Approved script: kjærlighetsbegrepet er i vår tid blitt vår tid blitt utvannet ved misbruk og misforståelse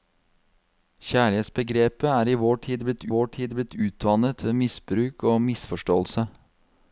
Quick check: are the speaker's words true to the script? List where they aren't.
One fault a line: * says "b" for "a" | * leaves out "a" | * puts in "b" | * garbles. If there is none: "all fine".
all fine